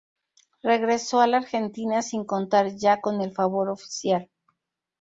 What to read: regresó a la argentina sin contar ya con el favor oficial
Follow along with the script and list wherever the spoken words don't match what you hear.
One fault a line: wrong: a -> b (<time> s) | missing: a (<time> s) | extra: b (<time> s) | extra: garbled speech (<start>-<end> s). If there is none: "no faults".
no faults